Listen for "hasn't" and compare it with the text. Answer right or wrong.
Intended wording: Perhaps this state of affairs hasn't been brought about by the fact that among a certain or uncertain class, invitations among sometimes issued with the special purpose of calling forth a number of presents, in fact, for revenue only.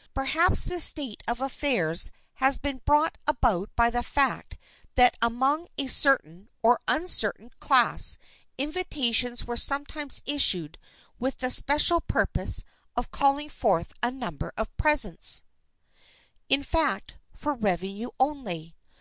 wrong